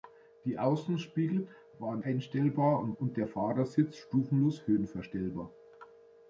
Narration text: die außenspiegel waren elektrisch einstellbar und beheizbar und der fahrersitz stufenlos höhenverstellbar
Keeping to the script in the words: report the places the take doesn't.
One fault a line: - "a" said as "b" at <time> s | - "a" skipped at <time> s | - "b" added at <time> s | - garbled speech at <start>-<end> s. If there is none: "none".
- "elektrisch" skipped at 2.0 s
- "beheizbar" skipped at 2.9 s